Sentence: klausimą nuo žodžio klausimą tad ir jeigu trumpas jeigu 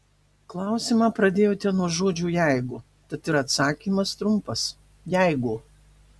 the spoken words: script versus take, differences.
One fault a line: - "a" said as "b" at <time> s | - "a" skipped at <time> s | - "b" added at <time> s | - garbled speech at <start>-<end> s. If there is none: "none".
- "pradėjote" added at 1.2 s
- "klausimą" said as "jeigu" at 2.3 s
- "jeigu" said as "atsakymas" at 3.4 s